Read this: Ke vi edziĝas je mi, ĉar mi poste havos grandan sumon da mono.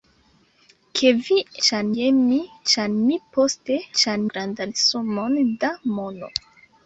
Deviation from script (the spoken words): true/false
true